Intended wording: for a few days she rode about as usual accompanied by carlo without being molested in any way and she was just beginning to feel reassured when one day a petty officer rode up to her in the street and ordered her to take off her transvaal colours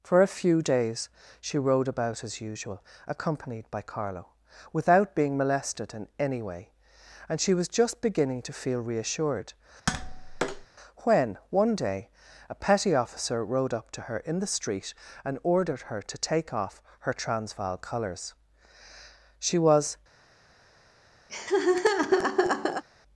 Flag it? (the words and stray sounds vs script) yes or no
yes